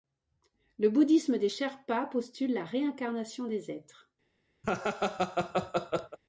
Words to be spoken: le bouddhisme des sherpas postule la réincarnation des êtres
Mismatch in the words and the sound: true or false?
true